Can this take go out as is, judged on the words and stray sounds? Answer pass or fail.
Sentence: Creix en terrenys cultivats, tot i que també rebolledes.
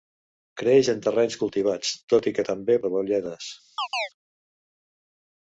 fail